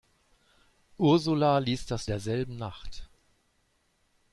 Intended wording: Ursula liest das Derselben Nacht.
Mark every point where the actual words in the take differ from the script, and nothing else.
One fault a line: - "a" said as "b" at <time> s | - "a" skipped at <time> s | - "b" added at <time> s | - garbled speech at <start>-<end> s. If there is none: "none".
none